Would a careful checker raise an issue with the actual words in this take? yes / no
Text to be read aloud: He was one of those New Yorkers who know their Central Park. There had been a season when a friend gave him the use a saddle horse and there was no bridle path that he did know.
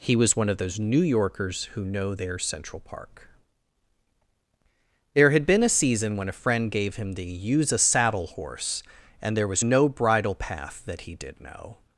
no